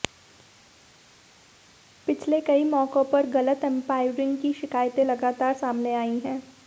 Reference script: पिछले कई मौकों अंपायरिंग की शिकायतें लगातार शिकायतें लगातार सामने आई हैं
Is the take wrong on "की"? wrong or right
right